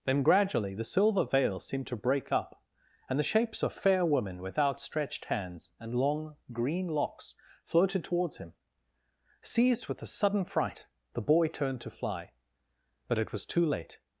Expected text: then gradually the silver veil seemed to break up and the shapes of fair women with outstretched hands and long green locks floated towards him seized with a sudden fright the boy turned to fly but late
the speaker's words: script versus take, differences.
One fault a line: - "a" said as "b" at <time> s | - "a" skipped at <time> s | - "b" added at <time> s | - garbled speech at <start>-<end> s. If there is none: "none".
- "it was too" added at 13.2 s